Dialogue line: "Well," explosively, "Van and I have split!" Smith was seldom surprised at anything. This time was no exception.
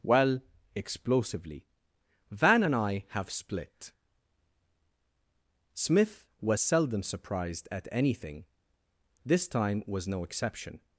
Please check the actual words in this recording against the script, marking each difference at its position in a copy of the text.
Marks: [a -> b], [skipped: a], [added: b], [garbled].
"Well," explosively, "Van and I have split!" Smith was seldom surprised at anything. This time was no exception.